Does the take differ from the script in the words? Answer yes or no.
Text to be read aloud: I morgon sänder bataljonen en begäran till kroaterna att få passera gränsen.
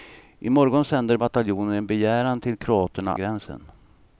yes